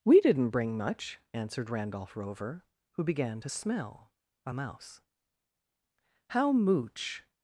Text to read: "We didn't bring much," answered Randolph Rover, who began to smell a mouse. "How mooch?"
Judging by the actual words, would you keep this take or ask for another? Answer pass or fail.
pass